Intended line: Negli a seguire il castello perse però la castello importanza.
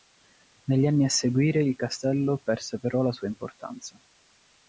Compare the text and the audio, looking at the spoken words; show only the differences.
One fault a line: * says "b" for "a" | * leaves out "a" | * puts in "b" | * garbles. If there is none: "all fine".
* puts in "anni"
* says "sua" for "castello"